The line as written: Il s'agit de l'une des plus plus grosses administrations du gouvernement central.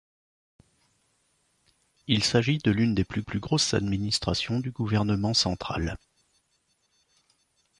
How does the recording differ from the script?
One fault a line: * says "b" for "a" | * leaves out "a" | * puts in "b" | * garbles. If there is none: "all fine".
all fine